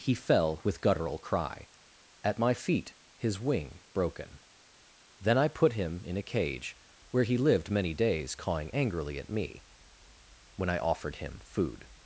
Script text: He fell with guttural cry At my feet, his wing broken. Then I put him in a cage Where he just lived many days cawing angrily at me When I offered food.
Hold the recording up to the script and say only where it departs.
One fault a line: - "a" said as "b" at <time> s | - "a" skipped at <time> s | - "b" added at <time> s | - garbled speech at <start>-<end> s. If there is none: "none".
- "just" skipped at 7.4 s
- "him" added at 11.2 s